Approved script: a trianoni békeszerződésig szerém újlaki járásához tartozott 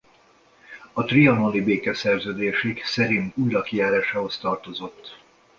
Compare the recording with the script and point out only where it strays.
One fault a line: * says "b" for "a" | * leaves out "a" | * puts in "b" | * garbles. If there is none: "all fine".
all fine